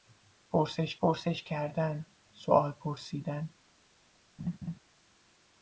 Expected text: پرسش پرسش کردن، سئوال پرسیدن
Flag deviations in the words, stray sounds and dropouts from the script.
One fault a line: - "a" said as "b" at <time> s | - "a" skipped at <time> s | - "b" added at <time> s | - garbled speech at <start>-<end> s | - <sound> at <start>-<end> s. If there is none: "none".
- laugh at 4.4-4.8 s